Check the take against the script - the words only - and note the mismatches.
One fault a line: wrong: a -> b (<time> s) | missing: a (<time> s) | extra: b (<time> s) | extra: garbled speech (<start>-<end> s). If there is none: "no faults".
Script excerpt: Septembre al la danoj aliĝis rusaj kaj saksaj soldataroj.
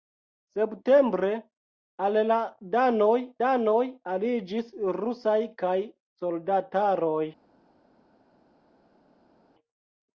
extra: danoj (3.4 s)
missing: saksaj (5.8 s)